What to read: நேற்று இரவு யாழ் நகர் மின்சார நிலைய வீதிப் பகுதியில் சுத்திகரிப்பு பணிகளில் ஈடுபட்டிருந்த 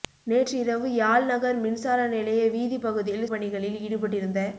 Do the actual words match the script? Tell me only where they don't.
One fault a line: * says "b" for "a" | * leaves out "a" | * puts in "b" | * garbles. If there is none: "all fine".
* leaves out "சுத்திகரிப்பு"